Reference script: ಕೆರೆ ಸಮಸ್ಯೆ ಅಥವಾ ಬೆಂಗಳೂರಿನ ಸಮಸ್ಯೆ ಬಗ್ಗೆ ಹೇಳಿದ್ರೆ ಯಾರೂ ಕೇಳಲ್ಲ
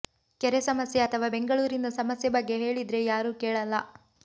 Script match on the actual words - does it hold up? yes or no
yes